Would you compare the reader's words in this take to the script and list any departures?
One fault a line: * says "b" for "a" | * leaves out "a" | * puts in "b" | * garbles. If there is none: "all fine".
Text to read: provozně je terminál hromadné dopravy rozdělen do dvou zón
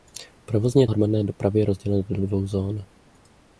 * leaves out "terminál"